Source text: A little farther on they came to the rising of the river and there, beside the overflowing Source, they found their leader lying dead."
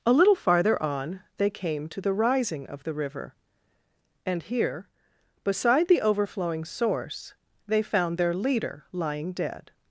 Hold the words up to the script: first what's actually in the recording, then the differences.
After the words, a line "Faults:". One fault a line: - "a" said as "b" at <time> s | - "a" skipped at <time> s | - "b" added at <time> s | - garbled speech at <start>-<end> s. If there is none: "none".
A little farther on they came to the rising of the river and here, beside the overflowing Source, they found their leader lying dead."
Faults:
- "there" said as "here" at 4.4 s